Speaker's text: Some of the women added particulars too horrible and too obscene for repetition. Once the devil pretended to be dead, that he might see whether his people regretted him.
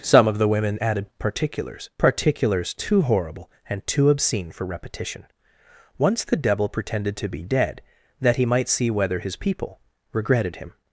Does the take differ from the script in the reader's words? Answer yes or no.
yes